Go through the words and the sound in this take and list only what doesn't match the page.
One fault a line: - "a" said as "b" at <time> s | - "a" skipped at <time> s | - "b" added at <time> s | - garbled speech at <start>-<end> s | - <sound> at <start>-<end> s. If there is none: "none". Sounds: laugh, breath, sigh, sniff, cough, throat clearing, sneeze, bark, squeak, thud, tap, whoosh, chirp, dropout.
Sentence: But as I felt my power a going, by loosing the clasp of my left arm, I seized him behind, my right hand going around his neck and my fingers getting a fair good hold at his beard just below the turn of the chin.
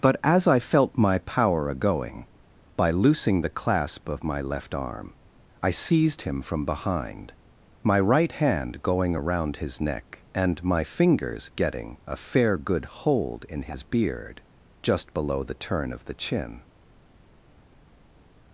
- "from" added at 6.4 s
- "at" said as "in" at 13.5 s